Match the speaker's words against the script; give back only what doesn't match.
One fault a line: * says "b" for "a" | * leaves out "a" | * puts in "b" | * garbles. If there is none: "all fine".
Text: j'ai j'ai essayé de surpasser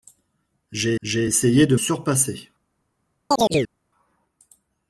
all fine